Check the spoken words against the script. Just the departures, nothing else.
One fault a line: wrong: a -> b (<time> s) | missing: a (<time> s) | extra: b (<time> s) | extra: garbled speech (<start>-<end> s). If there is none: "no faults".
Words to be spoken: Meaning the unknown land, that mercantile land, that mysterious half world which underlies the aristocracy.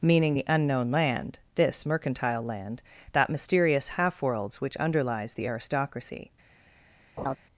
wrong: that -> this (1.5 s)
wrong: world -> worlds (4.2 s)